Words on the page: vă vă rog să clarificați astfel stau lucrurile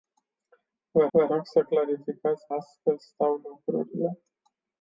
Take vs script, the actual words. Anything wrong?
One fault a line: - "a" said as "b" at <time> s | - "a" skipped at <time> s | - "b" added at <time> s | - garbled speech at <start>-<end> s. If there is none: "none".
none